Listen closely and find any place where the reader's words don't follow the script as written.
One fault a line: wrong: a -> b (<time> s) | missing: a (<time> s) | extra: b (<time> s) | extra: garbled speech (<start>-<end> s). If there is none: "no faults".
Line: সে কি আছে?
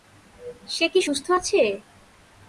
extra: সুস্থ (1.0 s)